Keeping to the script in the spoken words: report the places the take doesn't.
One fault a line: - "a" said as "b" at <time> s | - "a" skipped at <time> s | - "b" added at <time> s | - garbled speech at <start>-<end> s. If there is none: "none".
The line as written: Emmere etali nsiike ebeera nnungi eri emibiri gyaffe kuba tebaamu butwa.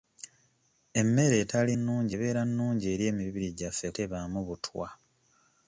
- "nsiike" said as "nnungi" at 1.8 s
- "kuba" skipped at 3.9 s